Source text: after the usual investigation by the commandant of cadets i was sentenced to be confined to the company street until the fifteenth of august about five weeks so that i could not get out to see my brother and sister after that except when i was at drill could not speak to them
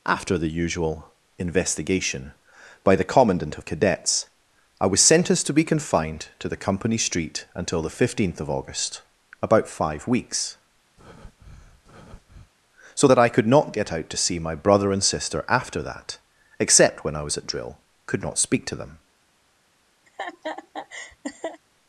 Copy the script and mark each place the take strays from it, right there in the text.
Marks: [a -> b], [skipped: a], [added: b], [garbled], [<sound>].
after the usual investigation by the commandant of cadets i was sentenced to be confined to the company street until the fifteenth of august about five weeks [breath] so that i could not get out to see my brother and sister after that except when i was at drill could not speak to them [laugh]